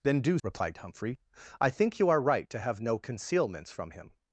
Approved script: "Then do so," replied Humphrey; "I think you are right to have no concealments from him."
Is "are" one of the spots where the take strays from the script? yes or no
no